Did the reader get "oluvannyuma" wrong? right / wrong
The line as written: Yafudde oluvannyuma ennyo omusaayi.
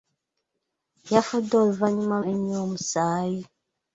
right